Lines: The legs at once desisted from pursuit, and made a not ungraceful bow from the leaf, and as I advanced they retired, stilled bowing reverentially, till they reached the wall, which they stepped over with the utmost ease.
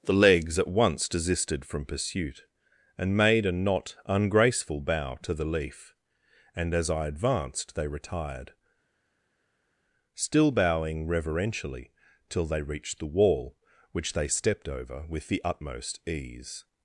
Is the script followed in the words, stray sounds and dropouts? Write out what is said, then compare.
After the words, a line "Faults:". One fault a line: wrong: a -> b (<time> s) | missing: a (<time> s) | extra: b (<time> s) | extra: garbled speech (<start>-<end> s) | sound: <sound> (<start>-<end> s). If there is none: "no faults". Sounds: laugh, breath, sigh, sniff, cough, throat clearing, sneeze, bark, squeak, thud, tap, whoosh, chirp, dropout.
The legs at once desisted from pursuit, and made a not ungraceful bow to the leaf, and as I advanced they retired, still bowing reverentially, till they reached the wall, which they stepped over with the utmost ease.
Faults:
wrong: from -> to (5.2 s)
wrong: stilled -> still (10.1 s)